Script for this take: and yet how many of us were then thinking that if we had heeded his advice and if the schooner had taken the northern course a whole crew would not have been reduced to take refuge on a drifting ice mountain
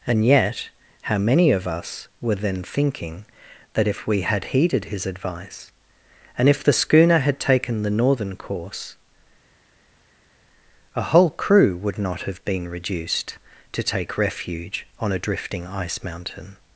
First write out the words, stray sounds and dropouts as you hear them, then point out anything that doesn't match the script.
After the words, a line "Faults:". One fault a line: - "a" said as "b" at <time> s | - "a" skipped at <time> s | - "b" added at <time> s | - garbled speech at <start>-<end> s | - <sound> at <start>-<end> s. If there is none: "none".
and yet how many of us were then thinking that if we had heeded his advice and if the schooner had taken the northern course a whole crew would not have been reduced to take refuge on a drifting ice mountain
Faults:
none